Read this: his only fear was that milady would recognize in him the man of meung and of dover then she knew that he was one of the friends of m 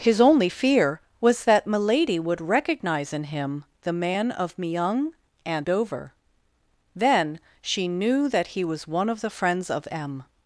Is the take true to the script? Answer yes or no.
no